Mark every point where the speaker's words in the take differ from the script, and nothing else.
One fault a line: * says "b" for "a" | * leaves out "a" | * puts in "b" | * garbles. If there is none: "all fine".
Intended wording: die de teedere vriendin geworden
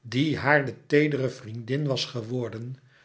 * puts in "haar"
* puts in "was"